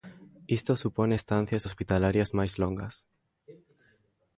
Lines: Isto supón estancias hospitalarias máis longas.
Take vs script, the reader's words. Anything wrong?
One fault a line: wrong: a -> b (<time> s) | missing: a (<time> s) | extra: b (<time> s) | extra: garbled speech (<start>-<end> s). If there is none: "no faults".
no faults